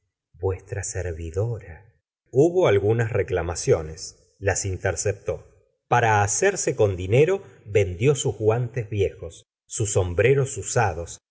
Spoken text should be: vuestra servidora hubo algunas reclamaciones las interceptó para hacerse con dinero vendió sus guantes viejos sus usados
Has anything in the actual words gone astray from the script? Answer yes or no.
yes